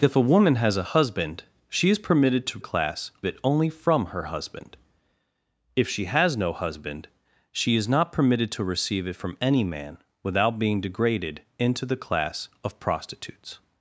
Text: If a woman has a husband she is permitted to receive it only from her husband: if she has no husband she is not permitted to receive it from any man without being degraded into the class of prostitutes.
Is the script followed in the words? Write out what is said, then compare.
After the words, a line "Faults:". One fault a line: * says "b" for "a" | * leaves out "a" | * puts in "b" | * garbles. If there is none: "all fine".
If a woman has a husband she is permitted to class it only from her husband: if she has no husband she is not permitted to receive it from any man without being degraded into the class of prostitutes.
Faults:
* says "class" for "receive"